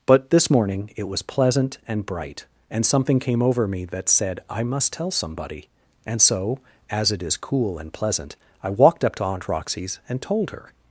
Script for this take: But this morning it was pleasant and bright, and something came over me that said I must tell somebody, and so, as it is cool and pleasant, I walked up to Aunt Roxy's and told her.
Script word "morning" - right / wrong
right